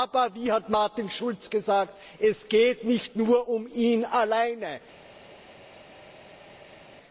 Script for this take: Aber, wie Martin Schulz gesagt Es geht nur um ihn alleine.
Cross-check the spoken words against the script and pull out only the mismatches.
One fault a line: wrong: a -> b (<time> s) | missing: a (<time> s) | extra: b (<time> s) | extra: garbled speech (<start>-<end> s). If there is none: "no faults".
extra: hat (0.5 s)
extra: nicht (2.8 s)